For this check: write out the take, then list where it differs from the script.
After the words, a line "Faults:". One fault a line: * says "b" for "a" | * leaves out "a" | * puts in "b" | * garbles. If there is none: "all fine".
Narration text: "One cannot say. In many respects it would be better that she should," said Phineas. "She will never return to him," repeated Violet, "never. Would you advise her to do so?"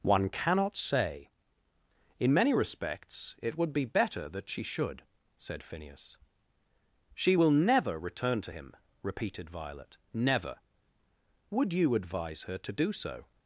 "One cannot say. In many respects it would be better that she should," said Phineas. "She will never return to him," repeated Violet, "never. Would you advise her to do so?"
Faults:
all fine